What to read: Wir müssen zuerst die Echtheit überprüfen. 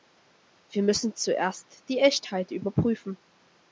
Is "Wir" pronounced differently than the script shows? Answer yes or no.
no